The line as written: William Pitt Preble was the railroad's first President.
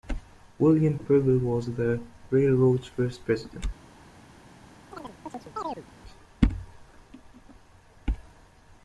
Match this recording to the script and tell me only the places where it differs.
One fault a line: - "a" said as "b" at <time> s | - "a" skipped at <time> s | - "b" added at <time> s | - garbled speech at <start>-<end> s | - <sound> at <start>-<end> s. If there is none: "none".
- "Pitt" skipped at 1.0 s
- chirp at 4.9-5.9 s